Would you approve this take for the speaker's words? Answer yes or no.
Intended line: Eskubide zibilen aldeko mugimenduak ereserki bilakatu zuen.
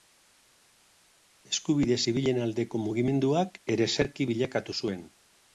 yes